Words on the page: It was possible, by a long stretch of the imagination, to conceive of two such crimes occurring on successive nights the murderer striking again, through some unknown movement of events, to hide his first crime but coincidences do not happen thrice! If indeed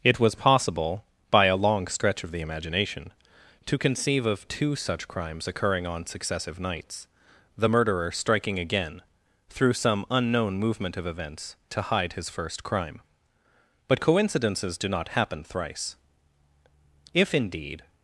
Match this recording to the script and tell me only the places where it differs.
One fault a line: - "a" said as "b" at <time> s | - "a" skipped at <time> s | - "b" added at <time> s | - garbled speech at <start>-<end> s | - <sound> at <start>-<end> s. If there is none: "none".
none